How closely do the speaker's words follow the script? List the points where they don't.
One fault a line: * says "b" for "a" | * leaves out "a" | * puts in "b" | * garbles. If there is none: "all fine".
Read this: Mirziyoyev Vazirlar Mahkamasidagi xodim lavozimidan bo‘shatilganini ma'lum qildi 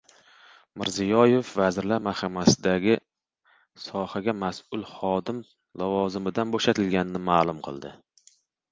* puts in "sohaga mas'ul"